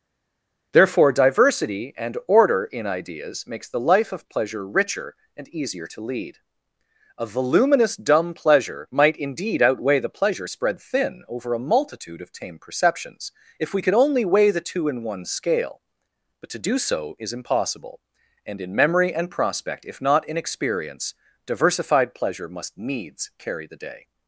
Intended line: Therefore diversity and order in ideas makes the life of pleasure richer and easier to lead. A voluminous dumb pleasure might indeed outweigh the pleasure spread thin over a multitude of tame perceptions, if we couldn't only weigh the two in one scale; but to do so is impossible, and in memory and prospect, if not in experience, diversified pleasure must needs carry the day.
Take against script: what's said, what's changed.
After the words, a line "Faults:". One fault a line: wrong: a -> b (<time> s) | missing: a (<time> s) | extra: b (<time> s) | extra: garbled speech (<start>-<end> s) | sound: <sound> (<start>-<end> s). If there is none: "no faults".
Therefore diversity and order in ideas makes the life of pleasure richer and easier to lead. A voluminous dumb pleasure might indeed outweigh the pleasure spread thin over a multitude of tame perceptions, if we could only weigh the two in one scale; but to do so is impossible, and in memory and prospect, if not in experience, diversified pleasure must needs carry the day.
Faults:
wrong: couldn't -> could (13.8 s)